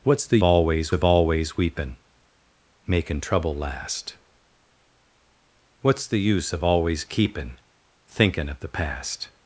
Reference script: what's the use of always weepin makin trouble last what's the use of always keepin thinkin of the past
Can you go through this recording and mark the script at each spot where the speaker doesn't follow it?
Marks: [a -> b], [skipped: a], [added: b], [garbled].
what's the [use -> always] of always weepin makin trouble last what's the use of always keepin thinkin of the past